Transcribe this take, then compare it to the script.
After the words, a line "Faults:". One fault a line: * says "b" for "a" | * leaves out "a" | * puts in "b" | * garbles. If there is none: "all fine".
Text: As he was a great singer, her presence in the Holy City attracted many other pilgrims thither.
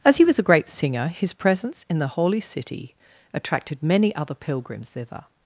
As he was a great singer, his presence in the Holy City attracted many other pilgrims thither.
Faults:
* says "his" for "her"